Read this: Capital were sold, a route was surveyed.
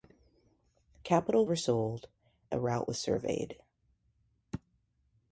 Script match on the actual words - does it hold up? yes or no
yes